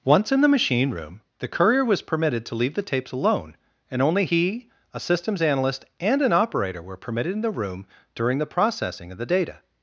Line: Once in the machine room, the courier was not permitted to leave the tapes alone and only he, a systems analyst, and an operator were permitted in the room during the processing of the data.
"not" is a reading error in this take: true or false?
true